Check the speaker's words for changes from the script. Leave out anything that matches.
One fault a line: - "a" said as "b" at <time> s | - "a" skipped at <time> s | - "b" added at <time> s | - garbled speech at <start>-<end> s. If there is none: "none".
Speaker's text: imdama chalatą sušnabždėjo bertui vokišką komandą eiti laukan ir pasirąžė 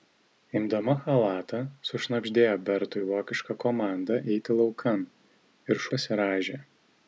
none